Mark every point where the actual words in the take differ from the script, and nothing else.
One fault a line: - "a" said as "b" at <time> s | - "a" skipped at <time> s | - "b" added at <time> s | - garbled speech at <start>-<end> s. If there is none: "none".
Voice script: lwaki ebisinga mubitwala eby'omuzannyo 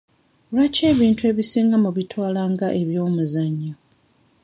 - "ebintu" added at 0.9 s
- "nga" added at 2.5 s